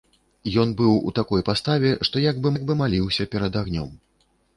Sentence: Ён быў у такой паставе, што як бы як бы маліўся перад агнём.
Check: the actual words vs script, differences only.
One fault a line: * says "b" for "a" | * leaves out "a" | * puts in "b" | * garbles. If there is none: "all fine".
all fine